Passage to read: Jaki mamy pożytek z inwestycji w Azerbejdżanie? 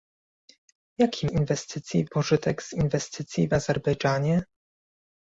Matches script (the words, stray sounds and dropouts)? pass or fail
fail